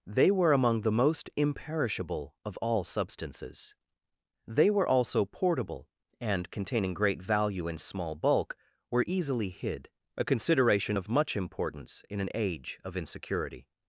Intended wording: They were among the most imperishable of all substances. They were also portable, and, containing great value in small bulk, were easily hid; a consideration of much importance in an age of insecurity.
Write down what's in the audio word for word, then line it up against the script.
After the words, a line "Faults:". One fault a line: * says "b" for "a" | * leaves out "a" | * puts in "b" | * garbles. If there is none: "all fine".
They were among the most imperishable of all substances. They were also portable, and, containing great value in small bulk, were easily hid; a consideration of much importance in an age of insecurity.
Faults:
all fine